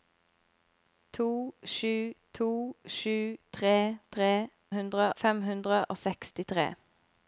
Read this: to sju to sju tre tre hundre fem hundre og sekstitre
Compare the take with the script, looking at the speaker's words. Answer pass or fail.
pass